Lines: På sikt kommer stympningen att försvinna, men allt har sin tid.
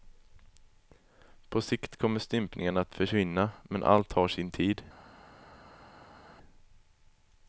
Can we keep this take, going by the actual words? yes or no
yes